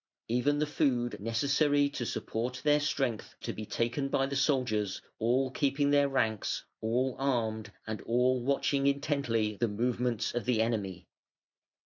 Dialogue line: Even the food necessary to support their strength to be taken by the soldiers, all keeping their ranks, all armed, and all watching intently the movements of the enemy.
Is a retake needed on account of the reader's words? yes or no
no